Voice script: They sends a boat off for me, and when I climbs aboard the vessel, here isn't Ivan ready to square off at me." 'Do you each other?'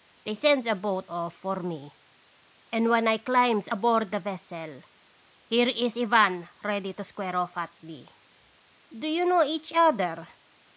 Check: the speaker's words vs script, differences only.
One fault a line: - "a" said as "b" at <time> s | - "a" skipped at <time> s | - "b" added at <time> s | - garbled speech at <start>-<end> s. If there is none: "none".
- "isn't" said as "is" at 5.7 s
- "know" added at 9.3 s